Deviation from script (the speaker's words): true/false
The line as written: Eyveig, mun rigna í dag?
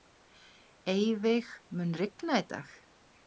false